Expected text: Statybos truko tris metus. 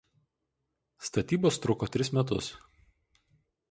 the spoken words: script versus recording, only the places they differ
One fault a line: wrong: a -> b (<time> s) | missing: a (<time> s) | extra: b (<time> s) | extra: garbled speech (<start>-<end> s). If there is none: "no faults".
no faults